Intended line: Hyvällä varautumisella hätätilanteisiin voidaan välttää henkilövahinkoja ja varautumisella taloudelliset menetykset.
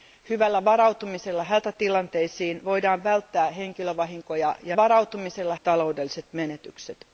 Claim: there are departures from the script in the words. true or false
false